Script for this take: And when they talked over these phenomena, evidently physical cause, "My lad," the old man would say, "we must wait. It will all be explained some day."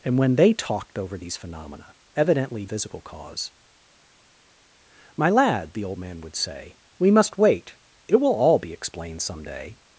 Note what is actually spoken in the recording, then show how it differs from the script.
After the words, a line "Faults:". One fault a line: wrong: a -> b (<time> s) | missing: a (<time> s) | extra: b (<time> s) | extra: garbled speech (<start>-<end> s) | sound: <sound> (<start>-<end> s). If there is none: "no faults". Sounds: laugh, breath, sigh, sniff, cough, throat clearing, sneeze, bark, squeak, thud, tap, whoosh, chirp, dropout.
And when they talked over these phenomena, evidently physical cause, "My lad," the old man would say, "we must wait. It will all be explained some day."
Faults:
no faults